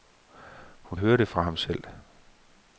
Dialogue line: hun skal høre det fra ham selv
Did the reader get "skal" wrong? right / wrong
wrong